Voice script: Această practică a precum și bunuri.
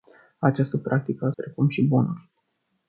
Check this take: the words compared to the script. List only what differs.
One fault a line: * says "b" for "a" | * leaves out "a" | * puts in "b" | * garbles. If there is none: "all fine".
all fine